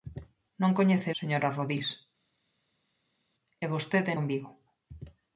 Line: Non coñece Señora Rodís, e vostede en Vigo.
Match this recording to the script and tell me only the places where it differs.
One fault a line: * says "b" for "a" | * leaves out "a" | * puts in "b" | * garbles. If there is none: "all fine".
all fine